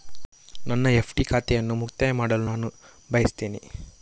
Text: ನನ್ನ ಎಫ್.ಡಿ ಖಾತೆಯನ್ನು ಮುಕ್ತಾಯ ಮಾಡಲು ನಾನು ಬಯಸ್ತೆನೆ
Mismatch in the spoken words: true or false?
false